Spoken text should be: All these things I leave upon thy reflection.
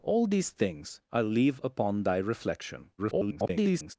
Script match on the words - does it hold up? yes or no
no